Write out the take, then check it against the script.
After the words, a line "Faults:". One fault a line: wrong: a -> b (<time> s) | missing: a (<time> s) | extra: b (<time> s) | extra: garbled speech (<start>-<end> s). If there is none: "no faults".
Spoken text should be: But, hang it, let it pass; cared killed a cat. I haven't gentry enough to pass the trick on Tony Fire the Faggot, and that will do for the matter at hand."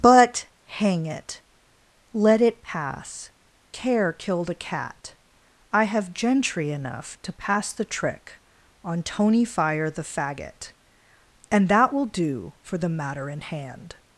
But, hang it, let it pass; care killed a cat. I have gentry enough to pass the trick on Tony Fire the Faggot, and that will do for the matter in hand."
Faults:
wrong: cared -> care (3.7 s)
wrong: haven't -> have (5.8 s)
wrong: at -> in (13.3 s)